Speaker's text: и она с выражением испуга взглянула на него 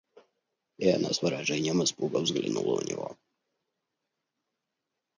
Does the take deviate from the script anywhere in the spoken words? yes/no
no